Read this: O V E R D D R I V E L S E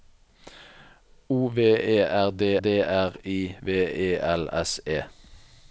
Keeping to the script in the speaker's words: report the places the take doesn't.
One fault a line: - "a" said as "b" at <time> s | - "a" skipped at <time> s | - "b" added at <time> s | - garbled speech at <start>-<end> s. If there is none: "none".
none